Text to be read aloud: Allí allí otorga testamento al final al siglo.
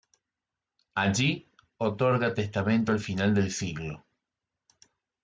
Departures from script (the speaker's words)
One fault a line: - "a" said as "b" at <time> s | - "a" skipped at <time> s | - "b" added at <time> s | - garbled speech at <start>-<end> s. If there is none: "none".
- "allí" skipped at 1.4 s
- "al" said as "del" at 3.3 s